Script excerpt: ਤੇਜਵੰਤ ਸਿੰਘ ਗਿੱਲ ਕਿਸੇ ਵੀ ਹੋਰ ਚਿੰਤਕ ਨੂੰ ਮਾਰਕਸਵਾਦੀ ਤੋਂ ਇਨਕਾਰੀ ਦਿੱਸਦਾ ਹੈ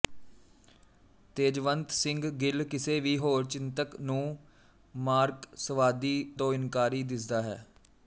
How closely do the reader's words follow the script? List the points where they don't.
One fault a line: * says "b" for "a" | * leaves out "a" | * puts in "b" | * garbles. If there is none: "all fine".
all fine